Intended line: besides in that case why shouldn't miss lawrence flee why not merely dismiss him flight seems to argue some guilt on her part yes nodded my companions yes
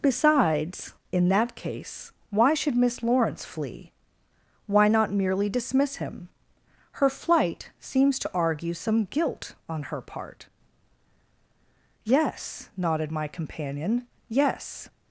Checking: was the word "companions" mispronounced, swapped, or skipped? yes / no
yes